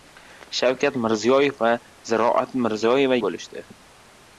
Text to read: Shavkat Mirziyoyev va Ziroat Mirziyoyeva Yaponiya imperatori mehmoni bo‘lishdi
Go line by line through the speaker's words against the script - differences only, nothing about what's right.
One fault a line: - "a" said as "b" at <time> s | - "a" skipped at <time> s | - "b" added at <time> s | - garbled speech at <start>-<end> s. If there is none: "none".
- "Yaponiya imperatori mehmoni" skipped at 3.2 s